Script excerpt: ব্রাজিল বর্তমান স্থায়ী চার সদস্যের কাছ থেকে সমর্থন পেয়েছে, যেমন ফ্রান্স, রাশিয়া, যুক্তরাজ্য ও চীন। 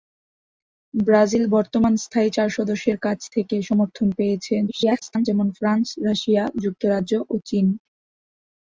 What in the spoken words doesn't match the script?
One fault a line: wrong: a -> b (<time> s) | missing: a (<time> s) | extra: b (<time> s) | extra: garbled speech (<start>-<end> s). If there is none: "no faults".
extra: garbled speech (4.7-5.3 s)